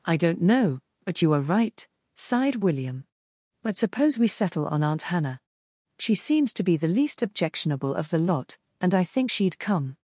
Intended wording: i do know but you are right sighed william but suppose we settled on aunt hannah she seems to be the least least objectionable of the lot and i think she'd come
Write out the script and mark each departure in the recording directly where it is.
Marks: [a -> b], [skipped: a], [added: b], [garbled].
i [do -> don't] know but you are right sighed william but suppose we [settled -> settle] on aunt hannah she seems to be the least [skipped: least] objectionable of the lot and i think she'd come